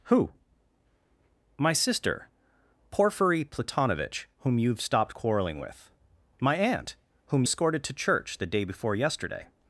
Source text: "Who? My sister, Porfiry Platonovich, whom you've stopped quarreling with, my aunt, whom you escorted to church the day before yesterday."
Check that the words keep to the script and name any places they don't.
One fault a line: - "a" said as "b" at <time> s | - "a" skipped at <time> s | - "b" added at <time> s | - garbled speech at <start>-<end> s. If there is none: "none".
- "you" skipped at 7.4 s